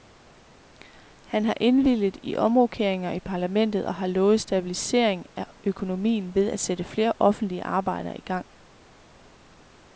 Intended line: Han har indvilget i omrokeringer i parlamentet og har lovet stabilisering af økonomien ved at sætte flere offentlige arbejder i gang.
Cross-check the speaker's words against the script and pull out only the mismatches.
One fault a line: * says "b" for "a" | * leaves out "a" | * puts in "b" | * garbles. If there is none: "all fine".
all fine